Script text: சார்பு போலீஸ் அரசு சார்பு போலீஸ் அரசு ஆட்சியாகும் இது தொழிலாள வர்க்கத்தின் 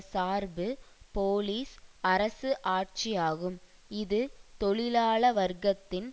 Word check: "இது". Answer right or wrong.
right